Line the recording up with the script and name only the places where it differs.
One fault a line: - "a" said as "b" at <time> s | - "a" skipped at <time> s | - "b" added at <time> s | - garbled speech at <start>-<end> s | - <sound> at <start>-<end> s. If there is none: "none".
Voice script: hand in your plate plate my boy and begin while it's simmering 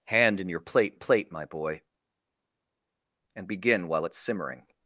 none